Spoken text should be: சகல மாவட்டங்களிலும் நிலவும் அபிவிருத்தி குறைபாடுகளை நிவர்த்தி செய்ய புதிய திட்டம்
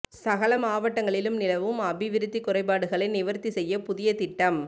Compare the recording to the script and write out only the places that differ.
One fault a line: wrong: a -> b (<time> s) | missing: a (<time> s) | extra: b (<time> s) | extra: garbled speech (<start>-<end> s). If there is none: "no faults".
no faults